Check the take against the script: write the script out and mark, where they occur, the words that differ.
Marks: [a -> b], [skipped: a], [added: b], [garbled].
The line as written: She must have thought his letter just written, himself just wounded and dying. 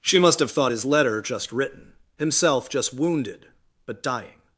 She must have thought his letter just written, himself just wounded [and -> but] dying.